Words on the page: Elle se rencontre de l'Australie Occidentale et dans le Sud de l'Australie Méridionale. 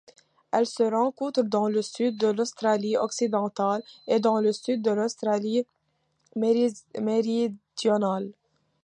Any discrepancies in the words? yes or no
yes